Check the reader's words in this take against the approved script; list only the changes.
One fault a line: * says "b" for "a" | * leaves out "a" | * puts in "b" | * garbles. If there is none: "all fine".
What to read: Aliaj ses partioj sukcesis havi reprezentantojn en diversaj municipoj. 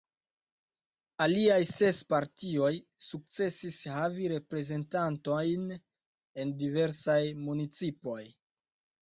all fine